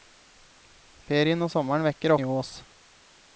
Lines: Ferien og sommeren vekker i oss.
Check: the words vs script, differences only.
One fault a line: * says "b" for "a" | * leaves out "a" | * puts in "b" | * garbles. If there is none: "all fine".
all fine